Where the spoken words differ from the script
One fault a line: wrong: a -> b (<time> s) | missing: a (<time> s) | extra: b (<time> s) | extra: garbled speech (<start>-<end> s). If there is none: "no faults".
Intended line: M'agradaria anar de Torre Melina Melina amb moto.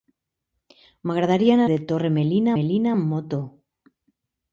no faults